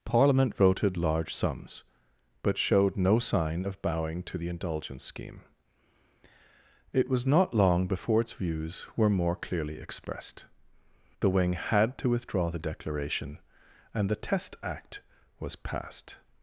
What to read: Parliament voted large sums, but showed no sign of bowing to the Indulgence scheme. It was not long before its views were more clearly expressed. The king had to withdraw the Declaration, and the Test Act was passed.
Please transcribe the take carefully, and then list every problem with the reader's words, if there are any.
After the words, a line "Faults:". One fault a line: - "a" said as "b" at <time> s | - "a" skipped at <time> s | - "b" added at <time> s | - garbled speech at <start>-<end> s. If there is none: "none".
Parliament voted large sums, but showed no sign of bowing to the Indulgence scheme. It was not long before its views were more clearly expressed. The wing had to withdraw the Declaration, and the Test Act was passed.
Faults:
- "king" said as "wing" at 11.3 s